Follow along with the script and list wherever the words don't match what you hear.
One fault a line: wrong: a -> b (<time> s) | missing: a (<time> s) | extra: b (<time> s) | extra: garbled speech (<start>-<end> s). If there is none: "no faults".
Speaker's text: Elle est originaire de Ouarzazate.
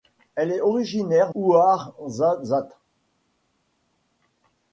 missing: de (1.4 s)